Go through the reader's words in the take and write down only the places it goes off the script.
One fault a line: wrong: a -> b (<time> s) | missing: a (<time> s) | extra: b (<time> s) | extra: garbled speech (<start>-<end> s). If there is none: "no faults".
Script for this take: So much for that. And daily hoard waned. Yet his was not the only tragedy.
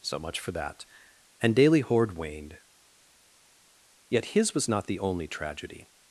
no faults